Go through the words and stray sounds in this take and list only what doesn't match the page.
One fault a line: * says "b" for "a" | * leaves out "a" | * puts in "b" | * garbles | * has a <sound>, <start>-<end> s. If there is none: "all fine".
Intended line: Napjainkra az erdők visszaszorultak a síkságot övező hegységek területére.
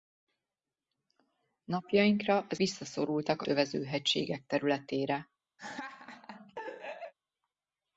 * leaves out "erdők"
* leaves out "síkságot"
* has a laugh, 5.6-7.1 s